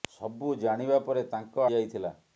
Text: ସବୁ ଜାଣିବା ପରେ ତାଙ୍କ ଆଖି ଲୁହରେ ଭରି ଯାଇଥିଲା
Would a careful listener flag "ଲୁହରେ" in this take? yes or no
yes